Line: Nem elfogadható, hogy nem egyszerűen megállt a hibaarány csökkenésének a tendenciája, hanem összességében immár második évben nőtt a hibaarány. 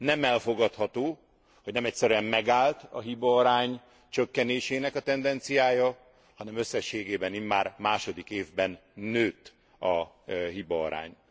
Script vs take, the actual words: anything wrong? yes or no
no